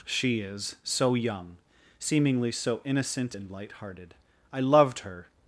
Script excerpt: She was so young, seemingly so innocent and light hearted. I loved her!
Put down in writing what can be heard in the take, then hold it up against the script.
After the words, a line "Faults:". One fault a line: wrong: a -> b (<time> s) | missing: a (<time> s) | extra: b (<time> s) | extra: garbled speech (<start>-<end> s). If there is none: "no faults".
She is so young, seemingly so innocent and light hearted. I loved her!
Faults:
wrong: was -> is (0.4 s)